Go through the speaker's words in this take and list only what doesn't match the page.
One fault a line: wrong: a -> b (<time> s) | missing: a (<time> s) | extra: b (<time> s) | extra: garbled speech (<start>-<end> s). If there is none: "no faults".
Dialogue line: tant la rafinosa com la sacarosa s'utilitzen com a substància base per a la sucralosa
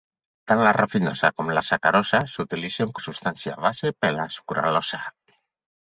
missing: com (3.0 s)